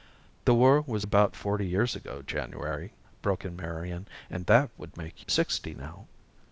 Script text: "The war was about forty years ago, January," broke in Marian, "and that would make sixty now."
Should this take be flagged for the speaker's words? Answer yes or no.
no